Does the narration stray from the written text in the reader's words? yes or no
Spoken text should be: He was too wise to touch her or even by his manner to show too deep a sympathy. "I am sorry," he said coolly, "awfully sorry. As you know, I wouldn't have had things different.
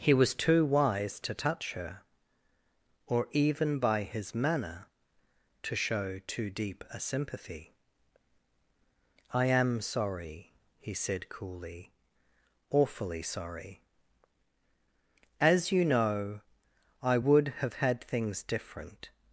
yes